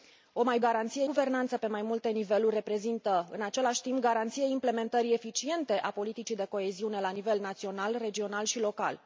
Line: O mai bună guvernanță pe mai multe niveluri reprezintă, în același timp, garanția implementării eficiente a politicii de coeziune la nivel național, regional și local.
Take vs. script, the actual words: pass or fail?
fail